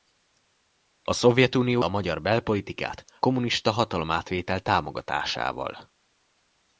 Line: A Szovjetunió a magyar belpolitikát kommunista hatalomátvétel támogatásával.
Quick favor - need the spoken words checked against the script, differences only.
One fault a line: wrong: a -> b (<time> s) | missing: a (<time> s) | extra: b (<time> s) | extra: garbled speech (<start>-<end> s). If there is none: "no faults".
no faults